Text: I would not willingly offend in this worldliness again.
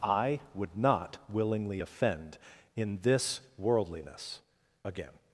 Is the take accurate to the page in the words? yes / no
yes